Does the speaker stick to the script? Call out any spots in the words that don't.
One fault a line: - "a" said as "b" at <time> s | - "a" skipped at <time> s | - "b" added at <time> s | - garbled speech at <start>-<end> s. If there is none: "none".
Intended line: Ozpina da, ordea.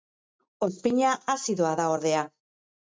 - "azidoa" added at 1.3 s